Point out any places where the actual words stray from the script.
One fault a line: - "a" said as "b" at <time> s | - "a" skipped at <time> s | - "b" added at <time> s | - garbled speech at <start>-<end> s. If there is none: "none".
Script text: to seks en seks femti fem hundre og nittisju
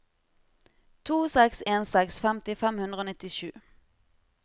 none